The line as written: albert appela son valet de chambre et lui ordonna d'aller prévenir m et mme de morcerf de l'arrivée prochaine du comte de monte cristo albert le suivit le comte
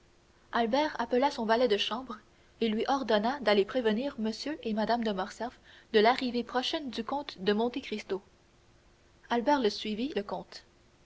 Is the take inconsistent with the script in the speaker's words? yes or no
no